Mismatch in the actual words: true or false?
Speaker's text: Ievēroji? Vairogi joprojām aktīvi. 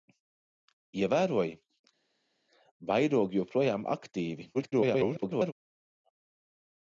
true